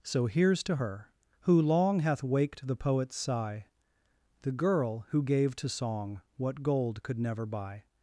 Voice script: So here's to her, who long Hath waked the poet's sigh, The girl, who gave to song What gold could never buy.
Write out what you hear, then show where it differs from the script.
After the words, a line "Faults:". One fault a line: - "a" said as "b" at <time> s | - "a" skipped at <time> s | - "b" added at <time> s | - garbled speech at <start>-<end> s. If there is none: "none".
So here's to her, who long Hath waked the poet's sigh, The girl, who gave to song What gold could never buy.
Faults:
none